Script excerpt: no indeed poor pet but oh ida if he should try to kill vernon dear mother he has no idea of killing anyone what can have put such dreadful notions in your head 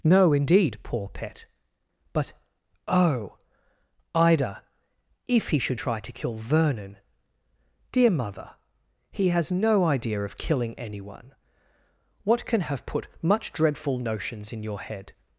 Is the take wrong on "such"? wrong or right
wrong